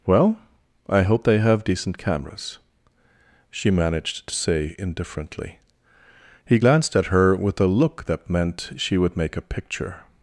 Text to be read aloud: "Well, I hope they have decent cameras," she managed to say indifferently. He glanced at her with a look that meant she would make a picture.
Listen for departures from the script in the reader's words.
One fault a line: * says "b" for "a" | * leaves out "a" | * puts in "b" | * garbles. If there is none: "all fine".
all fine